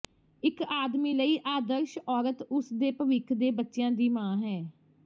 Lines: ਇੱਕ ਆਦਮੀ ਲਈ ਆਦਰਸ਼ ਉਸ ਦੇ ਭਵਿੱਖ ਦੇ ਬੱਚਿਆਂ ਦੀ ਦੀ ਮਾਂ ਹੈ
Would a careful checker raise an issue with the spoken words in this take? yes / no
yes